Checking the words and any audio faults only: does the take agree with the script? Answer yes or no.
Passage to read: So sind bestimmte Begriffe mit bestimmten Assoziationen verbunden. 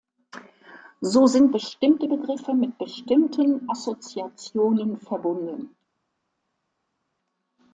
yes